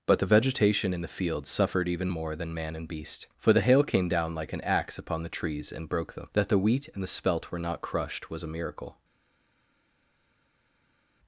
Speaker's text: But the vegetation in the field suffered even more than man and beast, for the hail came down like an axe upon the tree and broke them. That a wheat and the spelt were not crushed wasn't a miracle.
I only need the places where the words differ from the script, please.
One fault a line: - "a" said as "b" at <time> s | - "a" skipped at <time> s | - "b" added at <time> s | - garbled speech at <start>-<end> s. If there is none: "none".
- "tree" said as "trees" at 5.3 s
- "a" said as "the" at 6.5 s
- "wasn't" said as "was" at 8.3 s